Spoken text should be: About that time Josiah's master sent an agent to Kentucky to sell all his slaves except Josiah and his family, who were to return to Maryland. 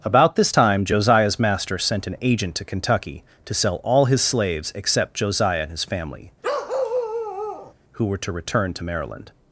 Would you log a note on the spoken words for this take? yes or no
yes